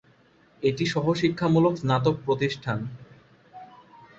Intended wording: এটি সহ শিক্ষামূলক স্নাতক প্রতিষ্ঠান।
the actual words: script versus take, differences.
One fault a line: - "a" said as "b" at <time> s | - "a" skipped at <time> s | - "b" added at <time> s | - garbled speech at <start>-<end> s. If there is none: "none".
none